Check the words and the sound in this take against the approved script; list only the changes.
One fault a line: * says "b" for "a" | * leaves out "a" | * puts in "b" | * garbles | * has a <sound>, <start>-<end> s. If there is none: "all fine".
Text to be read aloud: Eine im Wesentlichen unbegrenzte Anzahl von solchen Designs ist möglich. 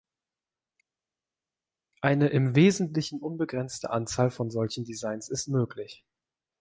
all fine